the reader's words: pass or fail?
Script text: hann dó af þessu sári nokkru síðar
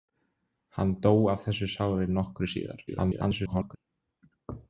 fail